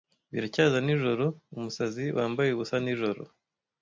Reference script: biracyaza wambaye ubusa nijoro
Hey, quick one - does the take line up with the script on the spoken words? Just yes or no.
no